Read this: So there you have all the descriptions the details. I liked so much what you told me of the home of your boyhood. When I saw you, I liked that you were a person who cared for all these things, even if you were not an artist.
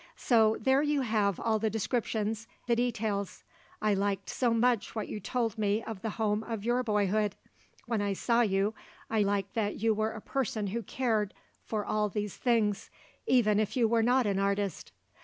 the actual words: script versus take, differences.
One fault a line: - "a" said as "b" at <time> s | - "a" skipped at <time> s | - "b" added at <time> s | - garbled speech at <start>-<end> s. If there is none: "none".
none